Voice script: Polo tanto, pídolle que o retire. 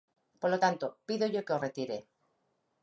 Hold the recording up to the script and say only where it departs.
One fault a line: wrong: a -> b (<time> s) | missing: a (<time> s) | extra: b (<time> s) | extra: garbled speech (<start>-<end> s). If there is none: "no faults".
no faults